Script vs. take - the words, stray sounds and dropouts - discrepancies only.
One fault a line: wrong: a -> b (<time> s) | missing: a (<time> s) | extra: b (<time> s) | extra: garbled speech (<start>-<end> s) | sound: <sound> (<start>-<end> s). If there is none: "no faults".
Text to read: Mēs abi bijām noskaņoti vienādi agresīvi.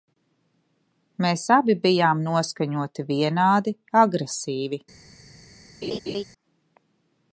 sound: laugh (5.8-6.2 s)